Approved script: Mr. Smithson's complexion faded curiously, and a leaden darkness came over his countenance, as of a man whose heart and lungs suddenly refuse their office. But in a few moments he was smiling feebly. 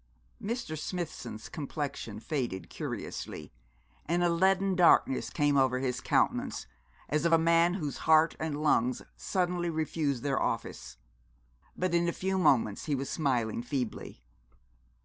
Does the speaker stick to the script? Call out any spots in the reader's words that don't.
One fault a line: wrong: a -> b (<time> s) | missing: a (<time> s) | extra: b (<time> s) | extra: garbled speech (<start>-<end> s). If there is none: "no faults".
no faults